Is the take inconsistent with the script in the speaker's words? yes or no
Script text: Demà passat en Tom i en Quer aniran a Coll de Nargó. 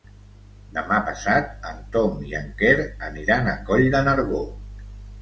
no